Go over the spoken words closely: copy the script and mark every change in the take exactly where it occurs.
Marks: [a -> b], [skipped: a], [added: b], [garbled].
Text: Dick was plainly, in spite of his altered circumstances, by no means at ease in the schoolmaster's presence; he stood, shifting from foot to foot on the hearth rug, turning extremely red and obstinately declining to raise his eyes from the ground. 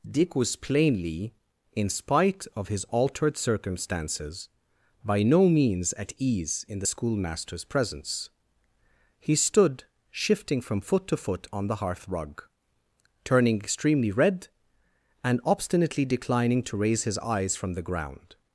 Dick was plainly, in spite of his altered circumstances, by no means at ease in the schoolmaster's presence; he stood, shifting from foot to foot on the hearth rug, turning extremely red and obstinately declining to raise his eyes from the ground.